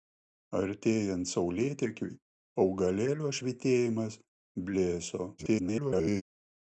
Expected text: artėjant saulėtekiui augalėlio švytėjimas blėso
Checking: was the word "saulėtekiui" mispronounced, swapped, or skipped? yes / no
no